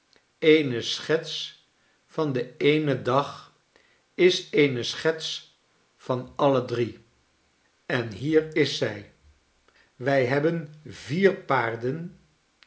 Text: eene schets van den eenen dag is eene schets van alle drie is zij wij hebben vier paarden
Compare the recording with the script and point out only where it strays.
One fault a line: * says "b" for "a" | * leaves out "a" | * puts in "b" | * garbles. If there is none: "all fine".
* puts in "en hier"